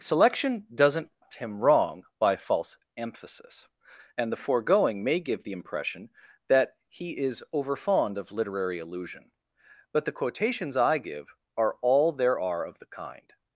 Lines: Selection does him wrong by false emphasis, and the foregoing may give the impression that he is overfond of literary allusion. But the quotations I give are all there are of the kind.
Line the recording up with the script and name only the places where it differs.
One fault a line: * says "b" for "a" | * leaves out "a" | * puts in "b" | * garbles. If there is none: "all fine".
* says "doesn't" for "does"